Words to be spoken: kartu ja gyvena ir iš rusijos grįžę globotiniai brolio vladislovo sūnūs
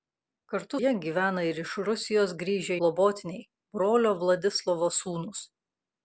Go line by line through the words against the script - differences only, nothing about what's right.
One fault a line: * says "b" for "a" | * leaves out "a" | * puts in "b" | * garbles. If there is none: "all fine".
all fine